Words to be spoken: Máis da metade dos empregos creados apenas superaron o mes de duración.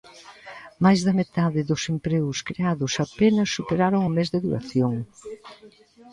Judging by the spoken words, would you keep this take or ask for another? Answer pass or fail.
pass